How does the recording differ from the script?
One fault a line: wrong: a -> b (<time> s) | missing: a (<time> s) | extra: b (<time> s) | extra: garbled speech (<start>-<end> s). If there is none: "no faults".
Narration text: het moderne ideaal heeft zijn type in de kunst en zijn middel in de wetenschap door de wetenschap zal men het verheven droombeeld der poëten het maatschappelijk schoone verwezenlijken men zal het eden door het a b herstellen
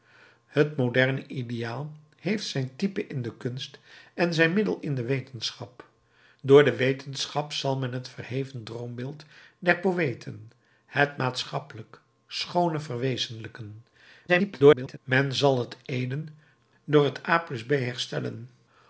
extra: garbled speech (14.3-15.0 s)